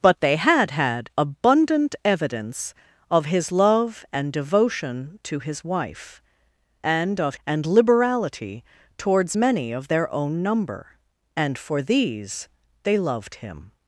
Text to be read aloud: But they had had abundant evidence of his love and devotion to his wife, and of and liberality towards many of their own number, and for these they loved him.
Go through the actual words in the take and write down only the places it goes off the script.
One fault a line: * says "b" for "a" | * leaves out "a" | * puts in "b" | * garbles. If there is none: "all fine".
all fine